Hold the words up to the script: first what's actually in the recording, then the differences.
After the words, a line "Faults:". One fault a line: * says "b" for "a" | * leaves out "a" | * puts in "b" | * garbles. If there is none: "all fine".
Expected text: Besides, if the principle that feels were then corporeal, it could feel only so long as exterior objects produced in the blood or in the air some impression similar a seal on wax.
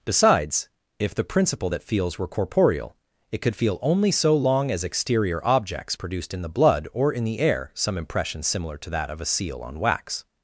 Besides, if the principle that feels were corporeal, it could feel only so long as exterior objects produced in the blood or in the air some impression similar to that of a seal on wax.
Faults:
* leaves out "then"
* puts in "to that of"